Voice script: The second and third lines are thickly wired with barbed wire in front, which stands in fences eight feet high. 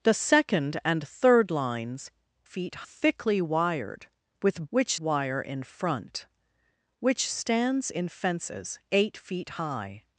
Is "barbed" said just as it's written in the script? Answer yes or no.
no